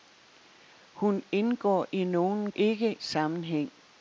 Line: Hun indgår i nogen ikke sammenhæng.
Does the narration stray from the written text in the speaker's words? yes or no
no